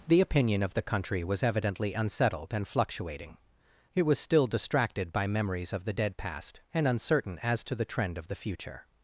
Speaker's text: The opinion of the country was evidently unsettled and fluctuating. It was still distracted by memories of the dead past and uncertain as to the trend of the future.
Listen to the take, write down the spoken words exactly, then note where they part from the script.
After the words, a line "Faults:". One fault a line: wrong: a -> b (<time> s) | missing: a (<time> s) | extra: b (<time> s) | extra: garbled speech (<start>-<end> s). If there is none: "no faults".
The opinion of the country was evidently unsettled and fluctuating. It was still distracted by memories of the dead past and uncertain as to the trend of the future.
Faults:
no faults